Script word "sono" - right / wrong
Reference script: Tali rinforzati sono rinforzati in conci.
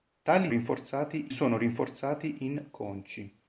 right